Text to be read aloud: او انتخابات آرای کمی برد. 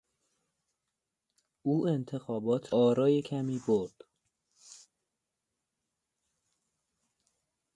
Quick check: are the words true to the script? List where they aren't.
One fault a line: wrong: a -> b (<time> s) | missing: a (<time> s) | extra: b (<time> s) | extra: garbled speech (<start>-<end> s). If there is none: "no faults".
no faults